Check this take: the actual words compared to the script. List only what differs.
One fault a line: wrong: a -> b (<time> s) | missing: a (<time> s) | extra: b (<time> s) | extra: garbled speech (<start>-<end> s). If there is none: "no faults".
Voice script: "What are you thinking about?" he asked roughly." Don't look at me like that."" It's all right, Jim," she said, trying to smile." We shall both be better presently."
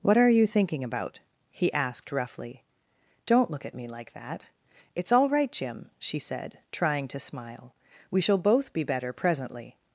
no faults